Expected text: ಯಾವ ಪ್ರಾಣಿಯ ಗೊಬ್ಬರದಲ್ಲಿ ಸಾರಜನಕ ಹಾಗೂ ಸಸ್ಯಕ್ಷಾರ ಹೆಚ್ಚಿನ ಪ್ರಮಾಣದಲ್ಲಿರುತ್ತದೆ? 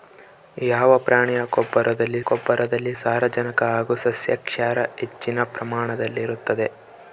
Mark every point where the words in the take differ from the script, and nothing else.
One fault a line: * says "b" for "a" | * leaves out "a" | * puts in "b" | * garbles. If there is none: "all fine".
* puts in "ಗೊಬ್ಬರದಲ್ಲಿ"